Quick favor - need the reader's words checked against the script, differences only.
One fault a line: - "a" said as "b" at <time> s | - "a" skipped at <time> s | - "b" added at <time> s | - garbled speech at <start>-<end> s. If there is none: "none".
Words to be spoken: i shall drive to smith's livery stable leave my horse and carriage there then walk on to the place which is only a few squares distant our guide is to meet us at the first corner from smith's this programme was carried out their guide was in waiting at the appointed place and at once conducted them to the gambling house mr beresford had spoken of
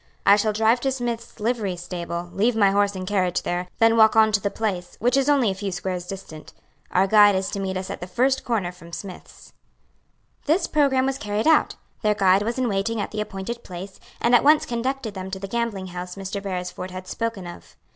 none